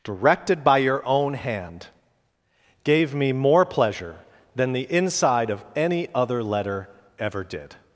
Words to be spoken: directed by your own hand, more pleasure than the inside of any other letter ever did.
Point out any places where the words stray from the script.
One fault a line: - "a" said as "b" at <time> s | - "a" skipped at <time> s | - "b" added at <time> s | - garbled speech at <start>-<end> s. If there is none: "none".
- "gave me" added at 2.8 s